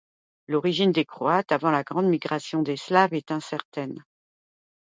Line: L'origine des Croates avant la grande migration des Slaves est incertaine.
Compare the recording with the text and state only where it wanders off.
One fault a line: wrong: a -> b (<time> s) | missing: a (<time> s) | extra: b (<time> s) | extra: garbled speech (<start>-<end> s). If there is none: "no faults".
no faults